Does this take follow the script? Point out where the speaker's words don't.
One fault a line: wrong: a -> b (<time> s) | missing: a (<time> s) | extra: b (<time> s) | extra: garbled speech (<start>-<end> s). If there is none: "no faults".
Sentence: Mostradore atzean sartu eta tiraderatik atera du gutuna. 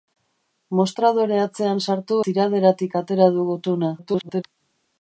missing: eta (2.2 s)
extra: garbled speech (4.0-4.4 s)